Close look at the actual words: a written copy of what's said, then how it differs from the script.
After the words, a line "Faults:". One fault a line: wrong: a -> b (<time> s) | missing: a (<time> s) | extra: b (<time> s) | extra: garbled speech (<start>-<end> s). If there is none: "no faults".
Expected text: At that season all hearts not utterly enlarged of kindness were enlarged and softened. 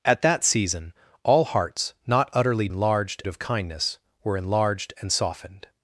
At that season all hearts not utterly enlarged of kindness were enlarged and softened.
Faults:
no faults